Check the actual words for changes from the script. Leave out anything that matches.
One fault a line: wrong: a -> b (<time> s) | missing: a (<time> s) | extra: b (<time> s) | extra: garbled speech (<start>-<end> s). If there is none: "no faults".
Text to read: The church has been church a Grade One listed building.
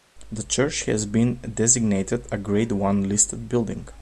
wrong: church -> designated (1.5 s)